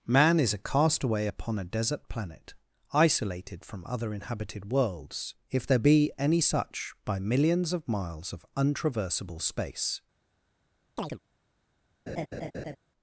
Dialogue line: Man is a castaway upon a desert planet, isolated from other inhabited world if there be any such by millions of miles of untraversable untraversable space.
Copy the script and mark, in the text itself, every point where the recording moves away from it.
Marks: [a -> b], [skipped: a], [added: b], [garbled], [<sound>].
Man is a castaway upon a desert planet, isolated from other inhabited [world -> worlds] if there be any such by millions of miles of untraversable [skipped: untraversable] space. [chirp] [laugh]